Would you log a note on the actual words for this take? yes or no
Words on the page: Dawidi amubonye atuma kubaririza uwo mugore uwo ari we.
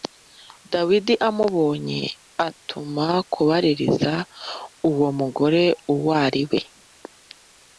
no